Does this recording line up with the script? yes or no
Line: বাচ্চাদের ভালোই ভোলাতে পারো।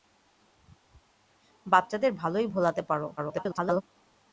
no